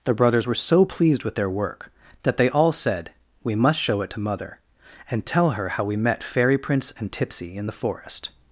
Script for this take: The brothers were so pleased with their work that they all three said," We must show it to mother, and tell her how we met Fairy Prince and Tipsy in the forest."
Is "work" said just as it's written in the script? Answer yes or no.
yes